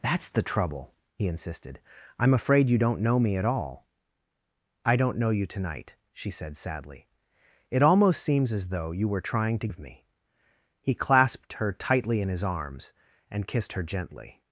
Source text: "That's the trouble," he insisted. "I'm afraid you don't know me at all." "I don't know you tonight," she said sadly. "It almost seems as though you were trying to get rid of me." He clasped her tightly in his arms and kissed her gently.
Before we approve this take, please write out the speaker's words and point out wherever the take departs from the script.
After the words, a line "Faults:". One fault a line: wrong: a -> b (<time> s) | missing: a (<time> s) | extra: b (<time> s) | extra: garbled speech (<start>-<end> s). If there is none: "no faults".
"That's the trouble," he insisted. "I'm afraid you don't know me at all." "I don't know you tonight," she said sadly. "It almost seems as though you were trying to of me." He clasped her tightly in his arms and kissed her gently.
Faults:
missing: get rid (9.7 s)